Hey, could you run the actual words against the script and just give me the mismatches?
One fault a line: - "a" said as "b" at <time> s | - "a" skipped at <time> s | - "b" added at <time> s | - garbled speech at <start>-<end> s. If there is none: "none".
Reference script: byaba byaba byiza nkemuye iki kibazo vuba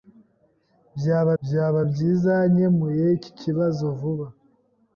none